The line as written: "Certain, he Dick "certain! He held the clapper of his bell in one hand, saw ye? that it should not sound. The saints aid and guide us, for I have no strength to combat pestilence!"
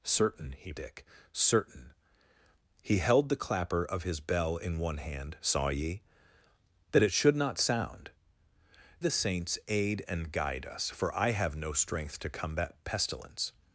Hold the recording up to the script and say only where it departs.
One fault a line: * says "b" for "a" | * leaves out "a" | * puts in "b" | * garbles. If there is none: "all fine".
all fine